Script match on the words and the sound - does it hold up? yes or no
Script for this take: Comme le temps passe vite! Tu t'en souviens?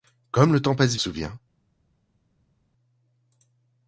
no